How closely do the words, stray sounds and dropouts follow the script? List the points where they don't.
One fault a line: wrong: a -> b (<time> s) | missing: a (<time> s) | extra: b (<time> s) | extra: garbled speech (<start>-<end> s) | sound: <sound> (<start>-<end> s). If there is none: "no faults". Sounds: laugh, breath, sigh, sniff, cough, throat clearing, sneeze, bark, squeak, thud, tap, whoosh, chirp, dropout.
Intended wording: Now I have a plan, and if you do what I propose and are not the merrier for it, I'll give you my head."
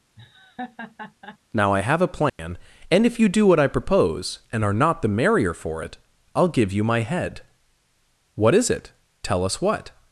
sound: laugh (0.2-1.4 s)
sound: dropout (2.3-2.4 s)
extra: What is it Tell us what (8.3 s)